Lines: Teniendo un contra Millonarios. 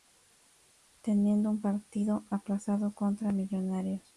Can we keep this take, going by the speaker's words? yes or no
no